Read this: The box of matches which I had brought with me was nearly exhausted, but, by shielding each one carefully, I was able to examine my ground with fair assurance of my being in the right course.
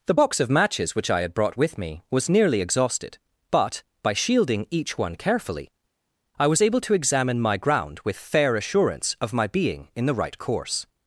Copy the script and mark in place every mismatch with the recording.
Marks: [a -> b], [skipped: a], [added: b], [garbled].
The box of matches which I had brought with me was nearly exhausted, but, by shielding each one carefully, I was able to examine my ground with fair assurance of my being in the right course.